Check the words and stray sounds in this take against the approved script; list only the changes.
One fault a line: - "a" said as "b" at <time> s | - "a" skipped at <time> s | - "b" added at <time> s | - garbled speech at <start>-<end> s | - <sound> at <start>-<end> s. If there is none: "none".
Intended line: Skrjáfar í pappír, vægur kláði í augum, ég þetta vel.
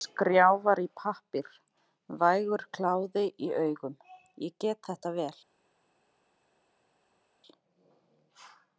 - "get" added at 4.7 s